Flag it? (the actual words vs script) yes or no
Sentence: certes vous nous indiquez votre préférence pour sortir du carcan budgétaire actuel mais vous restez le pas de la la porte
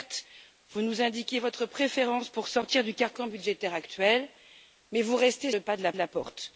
no